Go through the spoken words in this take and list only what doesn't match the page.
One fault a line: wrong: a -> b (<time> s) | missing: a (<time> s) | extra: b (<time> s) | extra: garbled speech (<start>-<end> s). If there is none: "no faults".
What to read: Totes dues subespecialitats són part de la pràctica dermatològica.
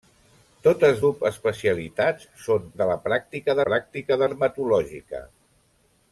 missing: dues (1.0 s)
missing: part (2.7 s)
extra: pràctica (3.7 s)